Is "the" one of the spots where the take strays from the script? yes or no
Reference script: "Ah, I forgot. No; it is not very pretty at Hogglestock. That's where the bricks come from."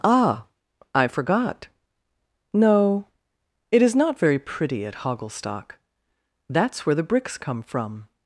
no